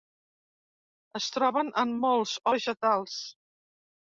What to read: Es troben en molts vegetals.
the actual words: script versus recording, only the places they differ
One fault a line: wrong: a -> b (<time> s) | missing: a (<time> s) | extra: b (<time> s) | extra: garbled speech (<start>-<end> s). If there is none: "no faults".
no faults